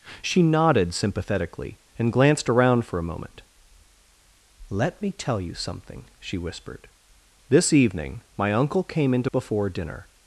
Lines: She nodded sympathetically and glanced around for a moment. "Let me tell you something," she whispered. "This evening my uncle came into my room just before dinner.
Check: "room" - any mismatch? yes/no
yes